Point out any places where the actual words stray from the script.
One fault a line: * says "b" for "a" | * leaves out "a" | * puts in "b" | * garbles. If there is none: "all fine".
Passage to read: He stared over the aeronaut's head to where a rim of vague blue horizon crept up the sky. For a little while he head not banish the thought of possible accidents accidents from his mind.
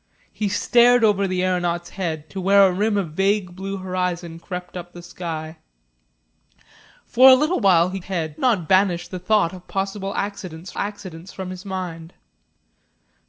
all fine